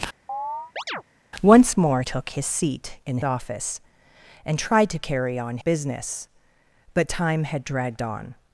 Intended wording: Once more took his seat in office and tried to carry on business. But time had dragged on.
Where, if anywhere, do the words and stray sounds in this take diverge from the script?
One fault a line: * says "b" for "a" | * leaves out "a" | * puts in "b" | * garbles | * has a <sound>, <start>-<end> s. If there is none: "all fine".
* has a chirp, 0.3-1.0 s